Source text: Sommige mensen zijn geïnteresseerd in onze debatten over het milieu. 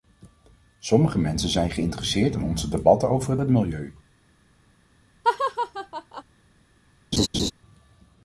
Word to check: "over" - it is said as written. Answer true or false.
true